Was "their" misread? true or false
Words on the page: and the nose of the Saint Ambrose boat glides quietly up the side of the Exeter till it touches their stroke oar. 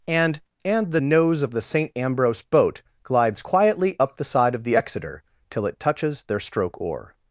false